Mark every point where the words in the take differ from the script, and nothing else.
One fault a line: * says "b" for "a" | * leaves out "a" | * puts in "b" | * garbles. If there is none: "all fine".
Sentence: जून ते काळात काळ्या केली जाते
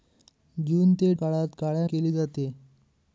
all fine